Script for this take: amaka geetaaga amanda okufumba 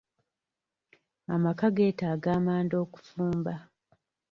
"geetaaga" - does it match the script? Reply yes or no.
yes